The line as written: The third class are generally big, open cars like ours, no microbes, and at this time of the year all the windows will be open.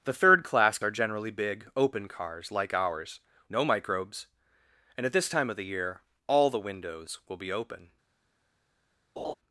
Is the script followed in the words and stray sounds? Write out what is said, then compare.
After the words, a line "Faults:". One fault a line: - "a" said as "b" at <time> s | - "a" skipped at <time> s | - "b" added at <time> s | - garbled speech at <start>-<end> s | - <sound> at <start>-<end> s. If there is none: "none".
The third class are generally big, open cars like ours, no microbes, and at this time of the year all the windows will be open.
Faults:
- laugh at 9.2-9.3 s